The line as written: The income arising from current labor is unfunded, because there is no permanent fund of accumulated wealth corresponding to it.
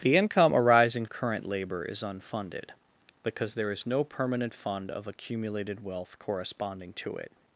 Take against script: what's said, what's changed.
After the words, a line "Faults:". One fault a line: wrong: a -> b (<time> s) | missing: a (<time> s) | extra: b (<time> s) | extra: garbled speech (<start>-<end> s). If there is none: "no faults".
The income arising current labor is unfunded, because there is no permanent fund of accumulated wealth corresponding to it.
Faults:
missing: from (1.1 s)